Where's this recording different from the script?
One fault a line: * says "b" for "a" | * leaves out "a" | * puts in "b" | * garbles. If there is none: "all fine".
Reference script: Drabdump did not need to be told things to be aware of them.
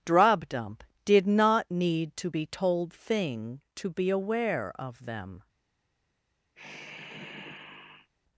* says "thing" for "things"